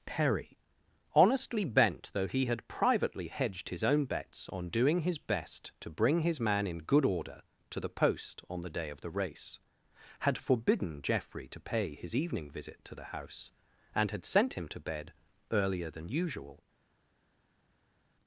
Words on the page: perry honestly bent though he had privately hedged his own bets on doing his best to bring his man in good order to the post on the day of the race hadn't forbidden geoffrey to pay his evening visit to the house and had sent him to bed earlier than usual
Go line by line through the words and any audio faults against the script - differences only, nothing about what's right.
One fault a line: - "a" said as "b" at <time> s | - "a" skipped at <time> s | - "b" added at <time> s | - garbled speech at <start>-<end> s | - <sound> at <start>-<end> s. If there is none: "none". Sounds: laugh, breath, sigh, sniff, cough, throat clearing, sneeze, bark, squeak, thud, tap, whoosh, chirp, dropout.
- "hadn't" said as "had" at 10.2 s